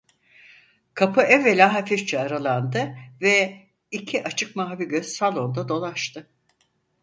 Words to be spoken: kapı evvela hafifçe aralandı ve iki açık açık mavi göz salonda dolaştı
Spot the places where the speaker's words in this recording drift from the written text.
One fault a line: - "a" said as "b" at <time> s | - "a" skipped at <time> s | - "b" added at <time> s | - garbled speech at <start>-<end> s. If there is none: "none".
- "açık" skipped at 4.6 s